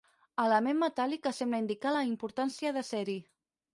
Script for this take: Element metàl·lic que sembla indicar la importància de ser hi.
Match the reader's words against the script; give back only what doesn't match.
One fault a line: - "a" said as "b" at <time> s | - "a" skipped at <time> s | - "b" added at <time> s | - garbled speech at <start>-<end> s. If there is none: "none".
none